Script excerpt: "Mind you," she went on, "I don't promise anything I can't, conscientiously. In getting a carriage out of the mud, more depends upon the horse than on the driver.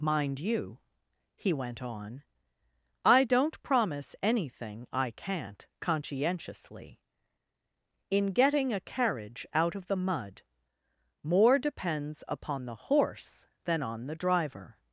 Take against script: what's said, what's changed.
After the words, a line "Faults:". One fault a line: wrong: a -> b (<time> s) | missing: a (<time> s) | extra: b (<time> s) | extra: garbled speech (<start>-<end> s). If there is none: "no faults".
"Mind you," he went on, "I don't promise anything I can't, conscientiously. In getting a carriage out of the mud, more depends upon the horse than on the driver.
Faults:
wrong: she -> he (1.4 s)